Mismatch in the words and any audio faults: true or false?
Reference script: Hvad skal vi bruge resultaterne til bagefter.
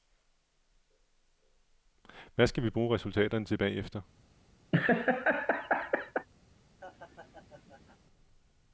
true